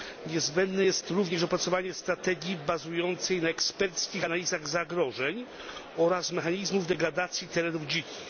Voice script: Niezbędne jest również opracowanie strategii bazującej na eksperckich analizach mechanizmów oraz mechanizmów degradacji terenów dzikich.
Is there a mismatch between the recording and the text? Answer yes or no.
yes